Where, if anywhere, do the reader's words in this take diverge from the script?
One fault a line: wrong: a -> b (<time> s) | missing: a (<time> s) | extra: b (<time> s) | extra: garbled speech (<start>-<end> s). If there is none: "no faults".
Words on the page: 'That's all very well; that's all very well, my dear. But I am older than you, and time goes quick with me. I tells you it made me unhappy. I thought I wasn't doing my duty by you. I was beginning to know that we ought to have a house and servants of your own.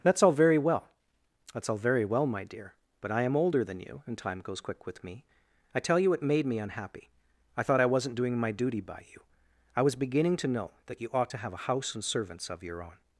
wrong: tells -> tell (5.8 s)
wrong: we -> you (11.0 s)